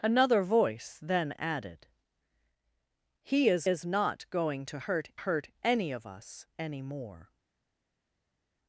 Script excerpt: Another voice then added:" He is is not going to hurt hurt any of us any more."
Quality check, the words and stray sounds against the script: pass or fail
pass